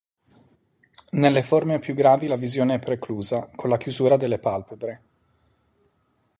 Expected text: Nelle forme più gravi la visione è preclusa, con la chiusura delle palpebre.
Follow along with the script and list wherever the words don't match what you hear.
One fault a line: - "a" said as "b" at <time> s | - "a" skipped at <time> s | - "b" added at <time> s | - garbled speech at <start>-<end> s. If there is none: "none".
none